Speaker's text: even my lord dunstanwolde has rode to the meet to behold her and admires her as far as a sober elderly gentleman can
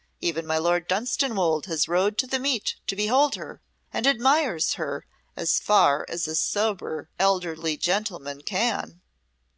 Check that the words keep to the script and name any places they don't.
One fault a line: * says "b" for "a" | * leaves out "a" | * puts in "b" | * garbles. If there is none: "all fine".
all fine